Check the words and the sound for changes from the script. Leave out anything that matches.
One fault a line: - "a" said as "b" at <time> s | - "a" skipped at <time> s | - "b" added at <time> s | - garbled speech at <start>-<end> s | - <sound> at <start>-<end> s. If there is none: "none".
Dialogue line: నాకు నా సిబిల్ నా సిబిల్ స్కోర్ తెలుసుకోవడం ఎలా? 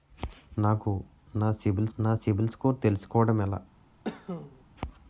- cough at 4.0-4.6 s